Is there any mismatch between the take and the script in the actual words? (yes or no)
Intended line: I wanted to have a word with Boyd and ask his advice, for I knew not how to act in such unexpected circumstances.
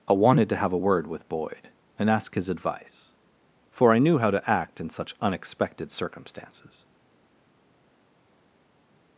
yes